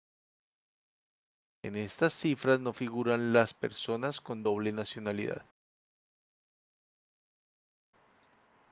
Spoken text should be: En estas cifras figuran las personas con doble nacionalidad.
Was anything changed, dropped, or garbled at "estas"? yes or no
no